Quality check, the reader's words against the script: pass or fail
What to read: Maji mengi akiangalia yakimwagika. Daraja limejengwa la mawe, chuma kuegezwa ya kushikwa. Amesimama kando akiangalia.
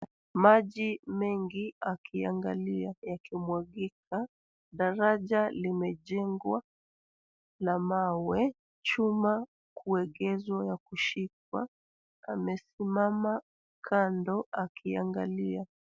pass